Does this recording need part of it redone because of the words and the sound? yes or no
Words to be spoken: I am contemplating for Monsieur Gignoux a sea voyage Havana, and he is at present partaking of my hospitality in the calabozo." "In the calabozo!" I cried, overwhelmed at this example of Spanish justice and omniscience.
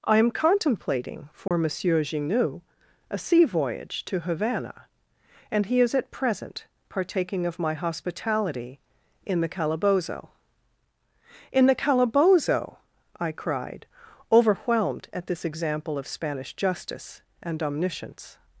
yes